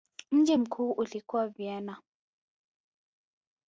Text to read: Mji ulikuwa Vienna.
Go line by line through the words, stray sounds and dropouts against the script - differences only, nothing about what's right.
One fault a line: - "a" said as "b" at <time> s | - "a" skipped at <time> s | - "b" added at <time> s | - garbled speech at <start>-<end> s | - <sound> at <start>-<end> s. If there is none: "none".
- "mkuu" added at 0.6 s